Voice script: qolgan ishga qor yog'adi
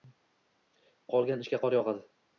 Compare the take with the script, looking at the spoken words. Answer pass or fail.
pass